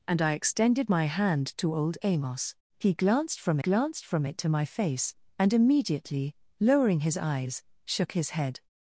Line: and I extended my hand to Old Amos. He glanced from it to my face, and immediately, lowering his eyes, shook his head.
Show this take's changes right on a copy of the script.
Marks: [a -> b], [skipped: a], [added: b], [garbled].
and I extended my hand to Old Amos. He glanced from [added: glanced from] it to my face, and immediately, lowering his eyes, shook his head.